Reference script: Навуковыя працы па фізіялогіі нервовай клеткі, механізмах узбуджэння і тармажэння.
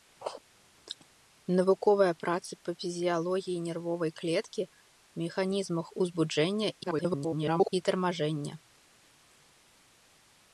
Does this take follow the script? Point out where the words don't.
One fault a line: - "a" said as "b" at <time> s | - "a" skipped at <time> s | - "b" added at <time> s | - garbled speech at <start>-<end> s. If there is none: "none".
- garbled speech at 6.8-7.7 s